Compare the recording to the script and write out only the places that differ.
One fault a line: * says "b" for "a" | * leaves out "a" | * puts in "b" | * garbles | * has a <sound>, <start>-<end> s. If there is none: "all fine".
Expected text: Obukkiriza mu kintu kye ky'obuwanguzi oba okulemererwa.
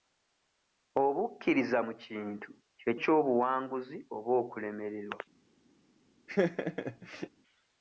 * has a laugh, 6.3-7.3 s